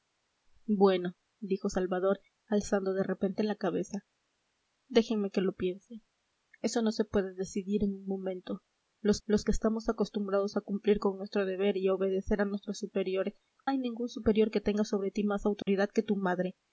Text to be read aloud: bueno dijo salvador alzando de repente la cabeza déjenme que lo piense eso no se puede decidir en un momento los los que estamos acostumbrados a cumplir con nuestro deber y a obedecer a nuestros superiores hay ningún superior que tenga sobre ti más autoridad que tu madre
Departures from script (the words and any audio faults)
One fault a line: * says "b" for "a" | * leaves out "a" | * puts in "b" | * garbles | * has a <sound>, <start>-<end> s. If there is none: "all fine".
* has a dropout, 15.6-15.7 s